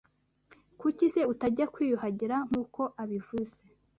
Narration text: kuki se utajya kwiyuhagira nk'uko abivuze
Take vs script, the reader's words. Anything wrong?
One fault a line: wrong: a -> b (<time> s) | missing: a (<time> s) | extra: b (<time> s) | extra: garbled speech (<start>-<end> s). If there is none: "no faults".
no faults